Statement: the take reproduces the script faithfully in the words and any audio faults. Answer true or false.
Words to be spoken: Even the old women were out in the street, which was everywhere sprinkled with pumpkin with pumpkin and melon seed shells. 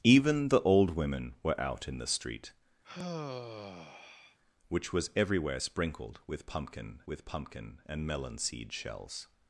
false